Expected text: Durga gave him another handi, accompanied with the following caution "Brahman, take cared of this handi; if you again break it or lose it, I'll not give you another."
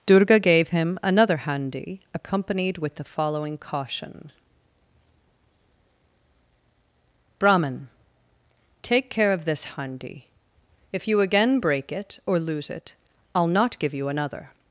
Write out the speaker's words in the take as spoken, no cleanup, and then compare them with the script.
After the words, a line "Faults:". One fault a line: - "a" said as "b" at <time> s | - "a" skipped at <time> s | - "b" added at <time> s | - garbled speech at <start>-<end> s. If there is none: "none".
Durga gave him another handi, accompanied with the following caution "Brahman, take care of this handi; if you again break it or lose it, I'll not give you another."
Faults:
- "cared" said as "care" at 9.1 s